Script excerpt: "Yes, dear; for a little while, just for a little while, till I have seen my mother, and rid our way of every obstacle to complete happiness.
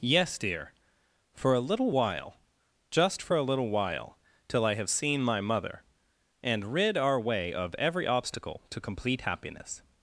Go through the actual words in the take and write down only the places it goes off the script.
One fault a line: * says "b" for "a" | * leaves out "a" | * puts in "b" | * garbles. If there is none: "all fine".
all fine